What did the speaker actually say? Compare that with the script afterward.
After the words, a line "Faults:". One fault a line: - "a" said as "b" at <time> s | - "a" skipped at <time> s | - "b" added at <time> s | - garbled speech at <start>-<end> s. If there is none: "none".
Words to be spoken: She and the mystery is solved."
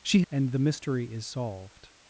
She and the mystery is solved."
Faults:
none